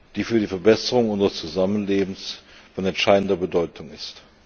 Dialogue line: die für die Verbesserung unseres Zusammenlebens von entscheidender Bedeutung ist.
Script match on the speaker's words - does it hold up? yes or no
yes